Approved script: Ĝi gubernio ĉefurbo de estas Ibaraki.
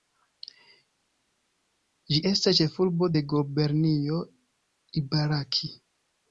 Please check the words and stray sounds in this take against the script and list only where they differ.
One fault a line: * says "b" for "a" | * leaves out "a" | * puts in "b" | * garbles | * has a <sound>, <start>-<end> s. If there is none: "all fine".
* says "estas" for "gubernio"
* says "gubernio" for "estas"